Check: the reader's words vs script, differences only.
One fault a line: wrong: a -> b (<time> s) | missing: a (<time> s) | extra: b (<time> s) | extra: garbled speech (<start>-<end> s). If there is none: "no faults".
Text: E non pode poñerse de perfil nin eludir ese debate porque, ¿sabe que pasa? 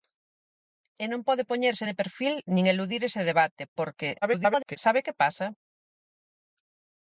extra: garbled speech (4.2-4.8 s)